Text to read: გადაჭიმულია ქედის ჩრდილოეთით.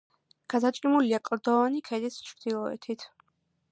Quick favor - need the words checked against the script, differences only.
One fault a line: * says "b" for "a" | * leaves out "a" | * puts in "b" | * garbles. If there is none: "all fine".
* puts in "კლდოვანი"